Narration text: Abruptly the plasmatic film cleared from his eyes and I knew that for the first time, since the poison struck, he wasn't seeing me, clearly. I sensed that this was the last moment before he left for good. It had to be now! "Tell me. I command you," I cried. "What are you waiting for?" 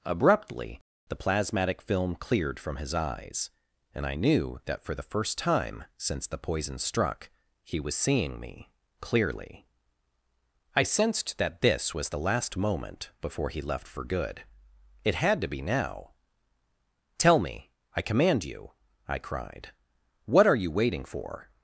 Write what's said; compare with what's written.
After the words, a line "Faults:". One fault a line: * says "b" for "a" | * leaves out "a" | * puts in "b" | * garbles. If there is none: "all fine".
Abruptly the plasmatic film cleared from his eyes and I knew that for the first time, since the poison struck, he was seeing me, clearly. I sensed that this was the last moment before he left for good. It had to be now! "Tell me. I command you," I cried. "What are you waiting for?"
Faults:
* says "was" for "wasn't"